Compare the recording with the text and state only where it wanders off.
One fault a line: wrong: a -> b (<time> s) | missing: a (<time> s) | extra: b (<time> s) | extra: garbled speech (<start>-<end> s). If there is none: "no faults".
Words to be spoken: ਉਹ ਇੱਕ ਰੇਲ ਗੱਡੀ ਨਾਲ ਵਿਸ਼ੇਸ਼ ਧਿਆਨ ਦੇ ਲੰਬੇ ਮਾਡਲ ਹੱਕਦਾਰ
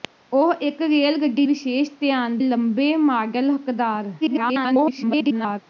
missing: ਨਾਲ (1.4 s)
missing: ਦੇ (2.4 s)
extra: garbled speech (4.2-5.6 s)